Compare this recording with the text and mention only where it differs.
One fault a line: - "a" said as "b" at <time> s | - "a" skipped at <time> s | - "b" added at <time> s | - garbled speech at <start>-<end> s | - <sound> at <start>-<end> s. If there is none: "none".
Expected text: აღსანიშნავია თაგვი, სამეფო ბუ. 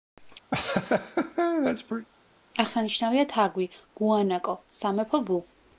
- laugh at 0.5-2.1 s
- "გუანაკო" added at 4.0 s